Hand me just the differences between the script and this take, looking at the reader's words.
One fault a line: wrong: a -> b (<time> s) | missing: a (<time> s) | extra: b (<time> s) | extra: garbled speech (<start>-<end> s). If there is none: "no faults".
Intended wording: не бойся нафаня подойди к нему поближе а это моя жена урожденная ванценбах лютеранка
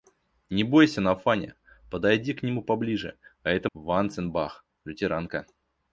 missing: моя жена урожденная (3.7 s)